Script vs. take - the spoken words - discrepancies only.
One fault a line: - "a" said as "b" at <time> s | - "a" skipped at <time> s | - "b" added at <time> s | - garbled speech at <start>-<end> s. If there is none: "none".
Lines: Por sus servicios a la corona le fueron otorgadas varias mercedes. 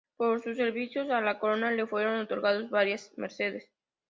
none